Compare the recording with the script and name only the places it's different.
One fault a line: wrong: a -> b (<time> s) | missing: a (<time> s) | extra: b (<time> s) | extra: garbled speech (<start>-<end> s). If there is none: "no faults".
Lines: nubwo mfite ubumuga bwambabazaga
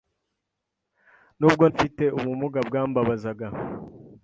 no faults